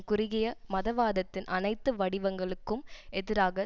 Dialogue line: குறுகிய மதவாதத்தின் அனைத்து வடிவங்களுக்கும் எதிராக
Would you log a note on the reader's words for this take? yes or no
no